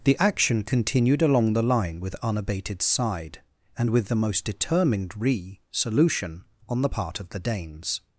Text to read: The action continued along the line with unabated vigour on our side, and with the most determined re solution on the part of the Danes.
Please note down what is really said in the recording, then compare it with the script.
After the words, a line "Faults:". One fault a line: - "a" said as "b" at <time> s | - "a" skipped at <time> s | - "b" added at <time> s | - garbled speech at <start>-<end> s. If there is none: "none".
The action continued along the line with unabated side, and with the most determined re solution on the part of the Danes.
Faults:
- "vigour on our" skipped at 2.8 s